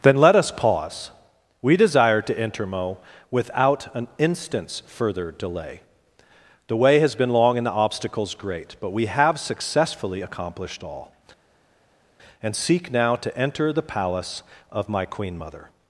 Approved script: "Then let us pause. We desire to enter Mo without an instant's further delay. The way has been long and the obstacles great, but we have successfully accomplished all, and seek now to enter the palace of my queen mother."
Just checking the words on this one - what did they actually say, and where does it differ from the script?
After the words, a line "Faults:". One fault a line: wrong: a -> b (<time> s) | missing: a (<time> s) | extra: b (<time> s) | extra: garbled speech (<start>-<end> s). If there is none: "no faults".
"Then let us pause. We desire to enter Mo without an instant's further delay. The way has been long and the obstacles great, but we have successfully accomplished all, and seek now to enter the palace of my queen mother."
Faults:
no faults